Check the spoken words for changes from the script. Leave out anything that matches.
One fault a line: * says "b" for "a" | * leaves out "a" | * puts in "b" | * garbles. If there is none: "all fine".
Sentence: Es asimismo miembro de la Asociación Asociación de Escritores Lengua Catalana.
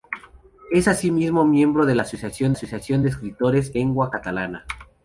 all fine